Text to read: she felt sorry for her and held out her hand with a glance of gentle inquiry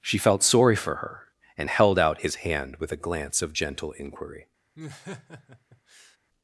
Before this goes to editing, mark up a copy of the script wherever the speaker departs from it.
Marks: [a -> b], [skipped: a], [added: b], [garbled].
she felt sorry for her and held out [her -> his] hand with a glance of gentle inquiry